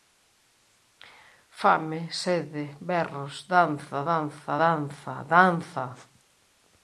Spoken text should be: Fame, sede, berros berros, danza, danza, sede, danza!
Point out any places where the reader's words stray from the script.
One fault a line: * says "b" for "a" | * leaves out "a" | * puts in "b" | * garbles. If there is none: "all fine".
* says "danza" for "berros"
* leaves out "sede"